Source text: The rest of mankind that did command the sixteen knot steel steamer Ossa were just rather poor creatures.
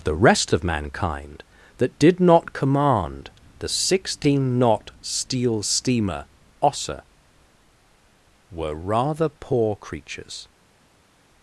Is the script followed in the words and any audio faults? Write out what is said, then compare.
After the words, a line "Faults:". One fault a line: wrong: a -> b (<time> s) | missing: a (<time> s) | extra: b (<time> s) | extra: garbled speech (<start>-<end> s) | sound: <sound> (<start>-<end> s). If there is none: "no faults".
The rest of mankind that did not command the sixteen knot steel steamer Ossa were rather poor creatures.
Faults:
extra: not (2.2 s)
missing: just (8.8 s)